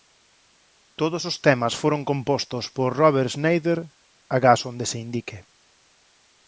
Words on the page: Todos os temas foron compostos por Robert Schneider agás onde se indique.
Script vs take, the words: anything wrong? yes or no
no